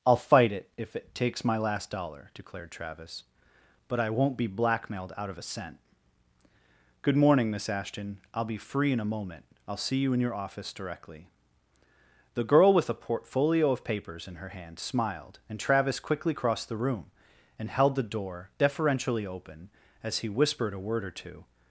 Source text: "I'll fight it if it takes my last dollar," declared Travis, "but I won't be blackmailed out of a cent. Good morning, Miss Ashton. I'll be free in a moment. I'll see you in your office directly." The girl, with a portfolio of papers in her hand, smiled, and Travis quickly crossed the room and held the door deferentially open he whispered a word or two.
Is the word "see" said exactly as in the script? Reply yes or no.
yes